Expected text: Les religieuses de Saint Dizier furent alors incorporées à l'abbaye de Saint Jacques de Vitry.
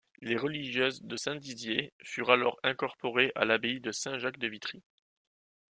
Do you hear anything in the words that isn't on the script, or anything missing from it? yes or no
no